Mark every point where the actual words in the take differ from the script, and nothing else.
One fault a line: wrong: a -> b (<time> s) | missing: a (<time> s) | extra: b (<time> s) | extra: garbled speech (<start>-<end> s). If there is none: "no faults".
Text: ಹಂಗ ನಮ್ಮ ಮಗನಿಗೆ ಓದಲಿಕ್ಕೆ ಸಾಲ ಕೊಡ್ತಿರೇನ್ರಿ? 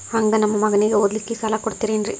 no faults